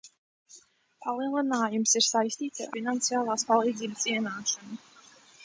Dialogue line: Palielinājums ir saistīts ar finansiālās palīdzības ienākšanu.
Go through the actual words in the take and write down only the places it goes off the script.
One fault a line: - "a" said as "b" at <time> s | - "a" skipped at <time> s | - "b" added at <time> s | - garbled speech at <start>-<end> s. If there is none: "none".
none